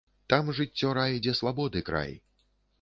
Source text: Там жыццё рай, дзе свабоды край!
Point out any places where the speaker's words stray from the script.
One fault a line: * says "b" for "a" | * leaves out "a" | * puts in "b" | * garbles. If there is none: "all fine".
all fine